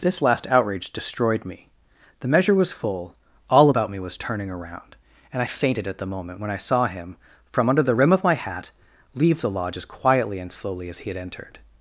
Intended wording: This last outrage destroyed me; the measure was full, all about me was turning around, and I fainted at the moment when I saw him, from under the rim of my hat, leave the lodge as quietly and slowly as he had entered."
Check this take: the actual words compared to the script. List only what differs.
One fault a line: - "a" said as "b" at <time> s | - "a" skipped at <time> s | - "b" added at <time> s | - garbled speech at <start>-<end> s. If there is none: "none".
none